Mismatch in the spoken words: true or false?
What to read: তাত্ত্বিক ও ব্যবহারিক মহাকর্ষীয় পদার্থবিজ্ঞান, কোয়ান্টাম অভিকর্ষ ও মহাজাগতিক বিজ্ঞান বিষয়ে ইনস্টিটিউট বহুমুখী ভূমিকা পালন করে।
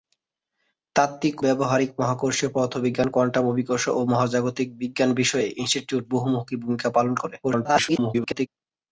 true